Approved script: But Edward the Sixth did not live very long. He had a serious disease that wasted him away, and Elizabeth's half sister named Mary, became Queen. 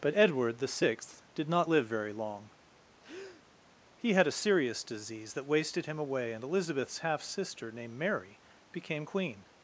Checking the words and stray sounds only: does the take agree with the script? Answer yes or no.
no